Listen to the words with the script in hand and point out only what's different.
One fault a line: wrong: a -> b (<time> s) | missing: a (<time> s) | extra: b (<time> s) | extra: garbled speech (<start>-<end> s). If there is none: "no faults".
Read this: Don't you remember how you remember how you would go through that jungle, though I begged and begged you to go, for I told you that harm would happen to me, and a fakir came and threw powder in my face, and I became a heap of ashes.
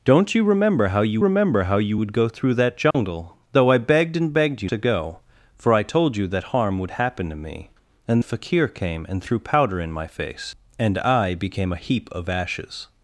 no faults